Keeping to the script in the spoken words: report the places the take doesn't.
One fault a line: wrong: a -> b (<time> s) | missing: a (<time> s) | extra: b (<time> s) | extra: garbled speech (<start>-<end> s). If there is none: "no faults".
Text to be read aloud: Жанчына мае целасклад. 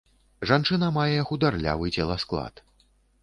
extra: хударлявы (1.3 s)